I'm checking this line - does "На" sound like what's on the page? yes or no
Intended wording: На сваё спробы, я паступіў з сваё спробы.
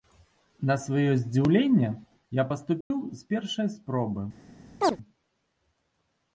yes